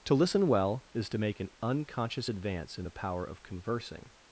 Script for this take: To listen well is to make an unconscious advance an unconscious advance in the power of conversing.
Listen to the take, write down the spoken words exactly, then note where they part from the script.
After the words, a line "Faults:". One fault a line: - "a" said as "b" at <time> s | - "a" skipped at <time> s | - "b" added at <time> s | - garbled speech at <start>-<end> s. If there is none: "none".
To listen well is to make an unconscious advance in the power of conversing.
Faults:
- "an unconscious advance" skipped at 2.8 s